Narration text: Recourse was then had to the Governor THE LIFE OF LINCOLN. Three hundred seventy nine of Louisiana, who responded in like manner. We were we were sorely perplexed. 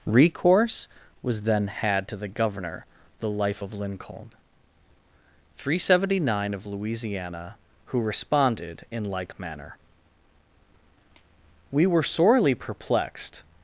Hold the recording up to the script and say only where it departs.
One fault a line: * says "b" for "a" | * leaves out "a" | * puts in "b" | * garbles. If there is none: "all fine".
* leaves out "we were"